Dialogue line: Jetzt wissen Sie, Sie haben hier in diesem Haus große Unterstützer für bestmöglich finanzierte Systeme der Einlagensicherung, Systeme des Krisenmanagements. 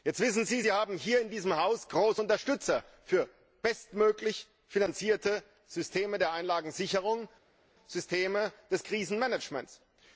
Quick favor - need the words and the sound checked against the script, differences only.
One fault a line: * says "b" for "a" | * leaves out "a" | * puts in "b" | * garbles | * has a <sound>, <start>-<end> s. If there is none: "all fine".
all fine